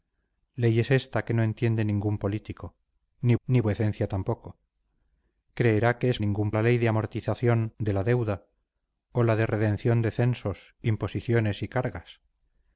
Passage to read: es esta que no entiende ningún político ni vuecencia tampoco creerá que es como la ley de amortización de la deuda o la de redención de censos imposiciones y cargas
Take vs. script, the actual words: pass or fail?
fail